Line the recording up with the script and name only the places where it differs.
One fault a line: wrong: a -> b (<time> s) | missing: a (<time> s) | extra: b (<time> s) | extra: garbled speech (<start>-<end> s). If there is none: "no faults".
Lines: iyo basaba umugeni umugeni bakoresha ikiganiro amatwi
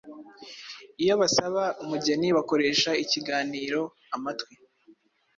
missing: umugeni (2.3 s)